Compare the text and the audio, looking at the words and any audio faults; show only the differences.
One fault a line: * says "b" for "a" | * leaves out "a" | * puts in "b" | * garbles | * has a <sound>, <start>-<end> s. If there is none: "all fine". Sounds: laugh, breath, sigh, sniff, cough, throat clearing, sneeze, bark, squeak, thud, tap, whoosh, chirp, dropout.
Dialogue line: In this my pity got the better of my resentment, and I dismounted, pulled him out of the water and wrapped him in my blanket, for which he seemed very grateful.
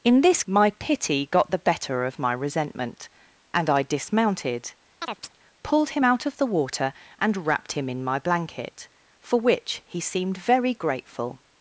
* has a chirp, 5.0-5.4 s